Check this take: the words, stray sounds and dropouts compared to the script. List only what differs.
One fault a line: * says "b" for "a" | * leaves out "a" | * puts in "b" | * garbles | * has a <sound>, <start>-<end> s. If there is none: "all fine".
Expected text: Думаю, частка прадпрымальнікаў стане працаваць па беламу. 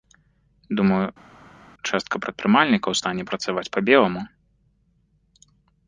all fine